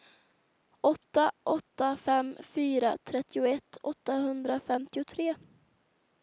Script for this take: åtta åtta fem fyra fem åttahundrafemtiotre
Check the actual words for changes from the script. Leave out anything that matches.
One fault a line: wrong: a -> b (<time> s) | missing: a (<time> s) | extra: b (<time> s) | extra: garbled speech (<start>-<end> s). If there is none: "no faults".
wrong: fem -> trettioett (3.0 s)